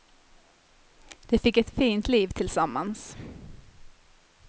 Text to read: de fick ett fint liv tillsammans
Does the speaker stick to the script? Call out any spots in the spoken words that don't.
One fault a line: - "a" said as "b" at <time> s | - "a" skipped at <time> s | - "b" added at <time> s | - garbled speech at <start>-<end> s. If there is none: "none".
none